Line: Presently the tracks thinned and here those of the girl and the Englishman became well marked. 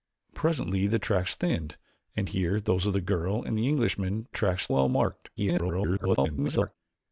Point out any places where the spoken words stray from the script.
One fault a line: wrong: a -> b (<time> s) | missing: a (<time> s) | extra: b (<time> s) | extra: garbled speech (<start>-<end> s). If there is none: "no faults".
wrong: became -> tracks (4.3 s)
extra: garbled speech (5.4-6.8 s)